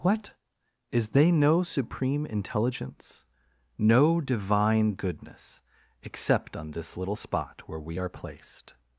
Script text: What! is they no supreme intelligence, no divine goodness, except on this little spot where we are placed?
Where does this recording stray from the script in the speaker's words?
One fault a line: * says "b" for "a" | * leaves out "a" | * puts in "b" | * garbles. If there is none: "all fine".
all fine